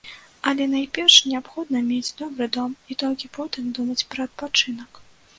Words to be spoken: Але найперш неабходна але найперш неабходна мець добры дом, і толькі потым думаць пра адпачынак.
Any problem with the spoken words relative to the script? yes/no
yes